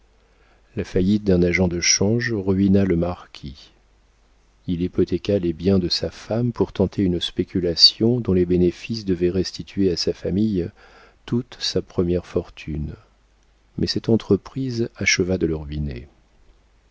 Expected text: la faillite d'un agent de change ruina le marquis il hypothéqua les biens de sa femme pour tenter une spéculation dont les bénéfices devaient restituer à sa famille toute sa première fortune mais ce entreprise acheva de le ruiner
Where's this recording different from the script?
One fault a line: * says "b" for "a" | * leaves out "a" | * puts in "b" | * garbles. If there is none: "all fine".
* says "cette" for "ce"